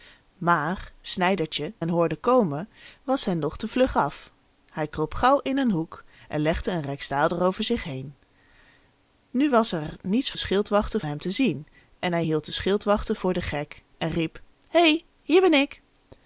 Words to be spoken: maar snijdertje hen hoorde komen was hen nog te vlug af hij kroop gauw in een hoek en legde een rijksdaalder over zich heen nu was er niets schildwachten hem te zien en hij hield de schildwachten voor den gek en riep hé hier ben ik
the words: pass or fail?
pass